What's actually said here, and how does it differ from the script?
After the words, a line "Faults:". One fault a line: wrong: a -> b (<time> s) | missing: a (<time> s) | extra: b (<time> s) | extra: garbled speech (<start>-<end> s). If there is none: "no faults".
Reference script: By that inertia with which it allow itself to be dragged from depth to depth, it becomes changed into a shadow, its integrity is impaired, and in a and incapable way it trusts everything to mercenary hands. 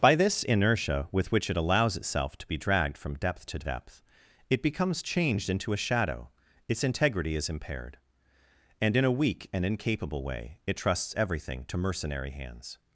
By this inertia with which it allows itself to be dragged from depth to depth, it becomes changed into a shadow, its integrity is impaired, and in a weak and incapable way it trusts everything to mercenary hands.
Faults:
wrong: that -> this (0.1 s)
wrong: allow -> allows (1.6 s)
extra: weak (9.1 s)